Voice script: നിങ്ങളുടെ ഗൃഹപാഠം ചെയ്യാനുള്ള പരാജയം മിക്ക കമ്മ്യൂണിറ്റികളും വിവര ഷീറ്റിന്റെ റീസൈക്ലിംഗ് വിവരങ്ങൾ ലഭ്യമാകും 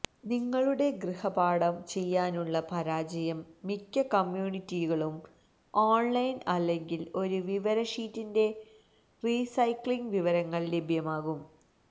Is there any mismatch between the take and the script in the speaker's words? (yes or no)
yes